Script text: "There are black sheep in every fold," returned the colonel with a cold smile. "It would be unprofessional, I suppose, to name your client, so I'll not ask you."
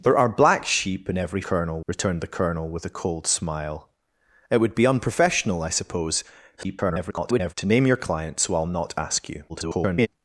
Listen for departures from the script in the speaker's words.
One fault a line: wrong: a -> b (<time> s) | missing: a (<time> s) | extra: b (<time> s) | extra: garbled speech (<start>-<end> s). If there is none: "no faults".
wrong: fold -> colonel (1.4 s)
extra: garbled speech (6.6-7.5 s)
extra: garbled speech (9.5-10.1 s)